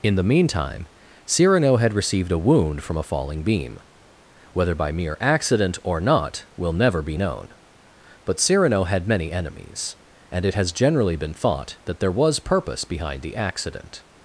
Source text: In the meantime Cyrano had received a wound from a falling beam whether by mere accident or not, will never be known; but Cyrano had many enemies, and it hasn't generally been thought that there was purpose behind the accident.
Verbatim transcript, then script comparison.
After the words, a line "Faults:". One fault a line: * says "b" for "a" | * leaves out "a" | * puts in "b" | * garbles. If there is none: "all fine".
In the meantime Cyrano had received a wound from a falling beam whether by mere accident or not, will never be known; but Cyrano had many enemies, and it has generally been thought that there was purpose behind the accident.
Faults:
* says "has" for "hasn't"